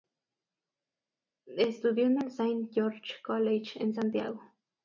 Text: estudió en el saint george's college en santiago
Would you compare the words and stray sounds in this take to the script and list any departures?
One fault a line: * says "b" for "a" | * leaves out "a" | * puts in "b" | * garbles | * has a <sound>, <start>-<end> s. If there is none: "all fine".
all fine